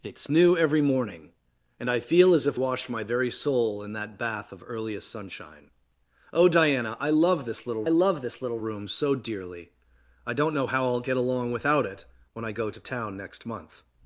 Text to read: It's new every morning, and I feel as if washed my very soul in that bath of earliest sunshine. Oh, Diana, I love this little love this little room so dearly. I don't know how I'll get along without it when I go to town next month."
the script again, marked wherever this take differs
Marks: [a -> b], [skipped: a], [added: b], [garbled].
It's new every morning, and I feel as if washed my very soul in that bath of earliest sunshine. Oh, Diana, I love this little love this little room so dearly. I don't know how I'll get along without it when I go to town next month."